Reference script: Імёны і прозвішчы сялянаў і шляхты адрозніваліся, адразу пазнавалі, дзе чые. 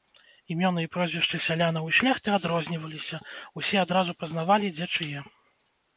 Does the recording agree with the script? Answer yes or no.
no